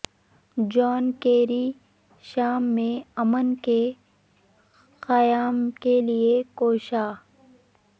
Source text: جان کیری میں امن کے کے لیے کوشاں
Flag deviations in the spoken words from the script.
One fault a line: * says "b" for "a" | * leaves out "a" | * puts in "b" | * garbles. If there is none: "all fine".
* puts in "شام"
* puts in "قیام"